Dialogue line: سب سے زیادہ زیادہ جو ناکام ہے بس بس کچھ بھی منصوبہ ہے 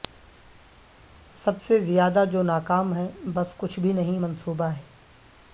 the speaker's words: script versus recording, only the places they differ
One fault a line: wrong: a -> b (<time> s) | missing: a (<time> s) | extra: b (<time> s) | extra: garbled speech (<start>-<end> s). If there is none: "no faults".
missing: زیادہ (2.2 s)
missing: بس (3.5 s)
extra: نہیں (3.9 s)